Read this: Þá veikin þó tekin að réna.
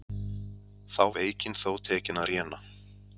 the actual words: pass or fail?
pass